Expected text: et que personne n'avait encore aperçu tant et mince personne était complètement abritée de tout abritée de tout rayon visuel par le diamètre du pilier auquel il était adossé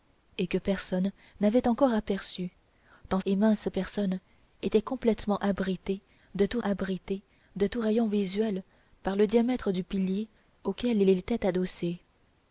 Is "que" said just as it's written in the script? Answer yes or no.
yes